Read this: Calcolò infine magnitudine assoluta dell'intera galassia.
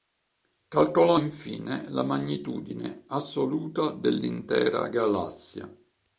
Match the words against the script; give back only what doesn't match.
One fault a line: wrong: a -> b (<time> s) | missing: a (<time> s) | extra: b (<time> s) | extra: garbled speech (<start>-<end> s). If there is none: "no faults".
extra: la (1.9 s)